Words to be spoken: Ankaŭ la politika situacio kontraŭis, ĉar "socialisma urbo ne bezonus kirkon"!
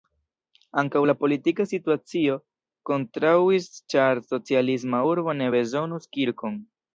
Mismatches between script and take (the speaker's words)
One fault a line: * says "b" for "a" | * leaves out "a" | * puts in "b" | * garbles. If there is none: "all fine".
all fine